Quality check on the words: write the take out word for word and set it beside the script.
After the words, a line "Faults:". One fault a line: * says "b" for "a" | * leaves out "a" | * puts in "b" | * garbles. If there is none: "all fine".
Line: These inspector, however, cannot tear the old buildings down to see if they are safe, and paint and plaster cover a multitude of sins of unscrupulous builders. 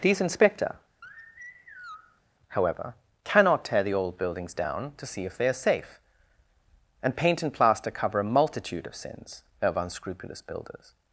These inspector, however, cannot tear the old buildings down to see if they are safe, and paint and plaster cover a multitude of sins of unscrupulous builders.
Faults:
all fine